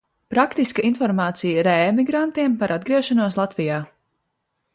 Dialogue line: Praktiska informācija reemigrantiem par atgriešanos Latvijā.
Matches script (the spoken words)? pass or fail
pass